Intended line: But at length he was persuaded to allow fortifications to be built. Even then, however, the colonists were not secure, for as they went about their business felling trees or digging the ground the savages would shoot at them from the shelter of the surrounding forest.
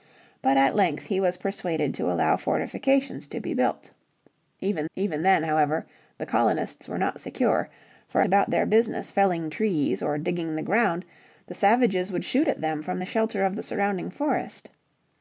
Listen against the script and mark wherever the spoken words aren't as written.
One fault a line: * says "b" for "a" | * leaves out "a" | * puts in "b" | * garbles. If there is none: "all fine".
* puts in "even"
* leaves out "as they went"